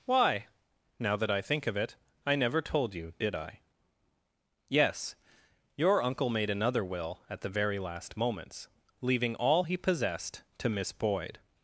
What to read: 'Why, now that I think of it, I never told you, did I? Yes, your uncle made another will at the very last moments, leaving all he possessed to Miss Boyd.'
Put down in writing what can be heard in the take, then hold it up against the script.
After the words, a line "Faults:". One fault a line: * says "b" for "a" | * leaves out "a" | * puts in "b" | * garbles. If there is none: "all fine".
'Why, now that I think of it, I never told you, did I? Yes, your uncle made another will at the very last moments, leaving all he possessed to Miss Boyd.'
Faults:
all fine